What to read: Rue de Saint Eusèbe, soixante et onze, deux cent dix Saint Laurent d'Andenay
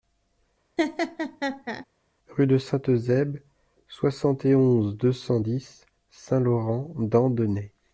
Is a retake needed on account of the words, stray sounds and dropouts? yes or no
yes